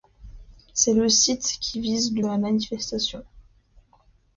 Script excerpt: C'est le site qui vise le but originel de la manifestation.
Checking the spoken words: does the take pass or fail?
fail